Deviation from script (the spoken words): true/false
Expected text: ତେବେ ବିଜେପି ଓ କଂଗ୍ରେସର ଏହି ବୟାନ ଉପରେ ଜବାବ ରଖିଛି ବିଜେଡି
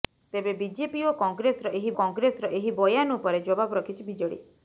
true